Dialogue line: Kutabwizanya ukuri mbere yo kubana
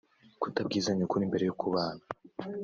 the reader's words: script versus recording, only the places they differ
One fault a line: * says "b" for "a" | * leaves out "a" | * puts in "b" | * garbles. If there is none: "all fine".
all fine